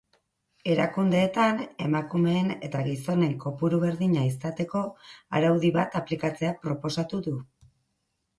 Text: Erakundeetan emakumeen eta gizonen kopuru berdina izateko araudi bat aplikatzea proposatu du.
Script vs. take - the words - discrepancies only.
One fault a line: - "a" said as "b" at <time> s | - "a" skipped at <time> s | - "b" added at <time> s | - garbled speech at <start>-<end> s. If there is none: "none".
none